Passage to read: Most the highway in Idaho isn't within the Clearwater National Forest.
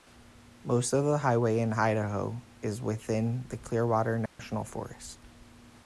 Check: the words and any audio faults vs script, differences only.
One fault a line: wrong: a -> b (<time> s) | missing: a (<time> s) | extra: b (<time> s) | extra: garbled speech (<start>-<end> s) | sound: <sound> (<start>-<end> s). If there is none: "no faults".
extra: of (0.9 s)
wrong: isn't -> is (2.6 s)
sound: dropout (4.3-4.4 s)